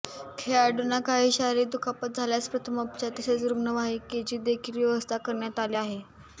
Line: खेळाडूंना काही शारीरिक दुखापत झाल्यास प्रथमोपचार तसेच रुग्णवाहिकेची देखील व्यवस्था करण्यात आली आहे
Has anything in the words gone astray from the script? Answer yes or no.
no